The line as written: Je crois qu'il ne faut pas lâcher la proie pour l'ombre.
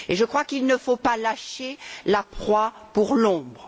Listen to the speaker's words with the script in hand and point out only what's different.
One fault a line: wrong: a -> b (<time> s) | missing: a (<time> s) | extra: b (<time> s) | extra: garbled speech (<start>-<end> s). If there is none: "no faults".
no faults